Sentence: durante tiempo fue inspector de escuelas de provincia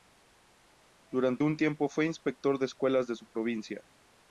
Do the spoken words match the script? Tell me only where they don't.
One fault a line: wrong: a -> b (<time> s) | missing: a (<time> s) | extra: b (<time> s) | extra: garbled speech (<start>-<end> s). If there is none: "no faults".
extra: un (1.4 s)
extra: su (3.1 s)